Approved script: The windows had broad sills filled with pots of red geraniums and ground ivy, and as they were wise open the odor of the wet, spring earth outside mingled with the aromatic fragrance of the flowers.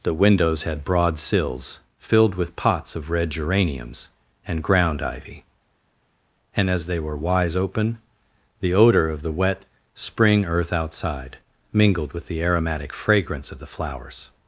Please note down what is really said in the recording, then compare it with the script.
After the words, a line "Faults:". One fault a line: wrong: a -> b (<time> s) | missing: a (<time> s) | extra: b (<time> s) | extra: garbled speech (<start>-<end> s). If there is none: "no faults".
The windows had broad sills filled with pots of red geraniums and ground ivy, and as they were wise open the odor of the wet, spring earth outside mingled with the aromatic fragrance of the flowers.
Faults:
no faults